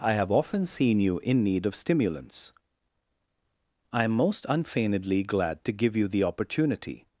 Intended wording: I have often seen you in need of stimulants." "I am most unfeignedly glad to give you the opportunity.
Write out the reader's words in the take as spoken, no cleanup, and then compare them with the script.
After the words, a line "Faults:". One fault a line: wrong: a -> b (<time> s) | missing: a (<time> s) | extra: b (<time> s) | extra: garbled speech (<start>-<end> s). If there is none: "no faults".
I have often seen you in need of stimulants." "I am most unfeignedly glad to give you the opportunity.
Faults:
no faults